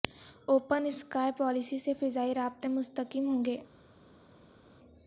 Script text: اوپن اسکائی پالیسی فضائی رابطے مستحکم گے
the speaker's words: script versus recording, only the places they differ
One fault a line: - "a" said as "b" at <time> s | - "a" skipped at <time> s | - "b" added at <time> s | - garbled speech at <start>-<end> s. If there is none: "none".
- "سے" added at 1.8 s
- "ہوں" added at 3.3 s